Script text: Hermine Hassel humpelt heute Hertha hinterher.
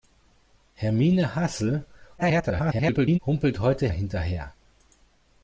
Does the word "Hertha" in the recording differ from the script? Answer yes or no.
yes